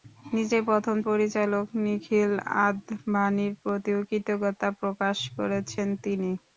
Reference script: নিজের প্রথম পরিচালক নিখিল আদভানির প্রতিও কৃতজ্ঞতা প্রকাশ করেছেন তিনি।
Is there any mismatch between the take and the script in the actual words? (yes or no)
no